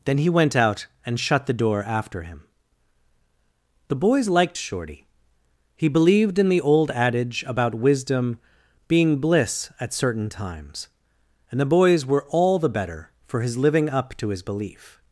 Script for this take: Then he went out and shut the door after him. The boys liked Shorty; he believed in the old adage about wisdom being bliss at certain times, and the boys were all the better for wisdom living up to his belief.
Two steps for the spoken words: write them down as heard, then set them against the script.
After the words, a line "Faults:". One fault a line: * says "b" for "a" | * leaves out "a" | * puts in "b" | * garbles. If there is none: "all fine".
Then he went out and shut the door after him. The boys liked Shorty; he believed in the old adage about wisdom being bliss at certain times, and the boys were all the better for his living up to his belief.
Faults:
* says "his" for "wisdom"